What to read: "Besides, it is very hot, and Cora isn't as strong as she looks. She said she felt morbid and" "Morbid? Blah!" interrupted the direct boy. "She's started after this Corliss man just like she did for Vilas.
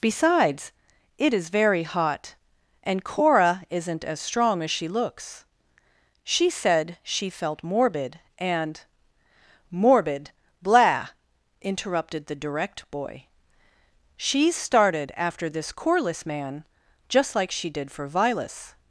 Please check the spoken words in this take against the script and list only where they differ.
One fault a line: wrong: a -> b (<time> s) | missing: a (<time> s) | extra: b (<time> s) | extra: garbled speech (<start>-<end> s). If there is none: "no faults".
no faults